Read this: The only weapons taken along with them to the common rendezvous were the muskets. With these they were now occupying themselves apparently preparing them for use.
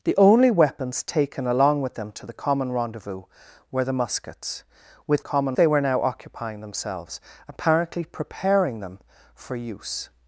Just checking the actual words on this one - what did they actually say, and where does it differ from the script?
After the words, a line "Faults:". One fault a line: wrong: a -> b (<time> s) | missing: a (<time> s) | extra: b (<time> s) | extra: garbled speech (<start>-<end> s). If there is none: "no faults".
The only weapons taken along with them to the common rendezvous were the muskets. With common they were now occupying themselves apparently preparing them for use.
Faults:
wrong: these -> common (5.2 s)